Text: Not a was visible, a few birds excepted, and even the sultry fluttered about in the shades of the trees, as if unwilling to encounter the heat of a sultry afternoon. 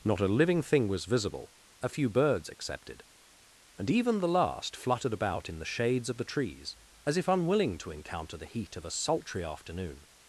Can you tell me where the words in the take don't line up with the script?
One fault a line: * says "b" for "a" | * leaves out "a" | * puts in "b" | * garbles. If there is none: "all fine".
* puts in "living thing"
* says "last" for "sultry"